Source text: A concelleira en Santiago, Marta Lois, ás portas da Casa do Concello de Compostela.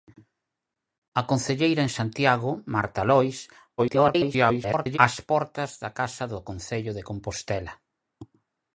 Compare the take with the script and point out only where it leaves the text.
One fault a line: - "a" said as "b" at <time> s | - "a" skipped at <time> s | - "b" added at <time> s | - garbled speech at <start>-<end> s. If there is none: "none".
- garbled speech at 3.8-5.0 s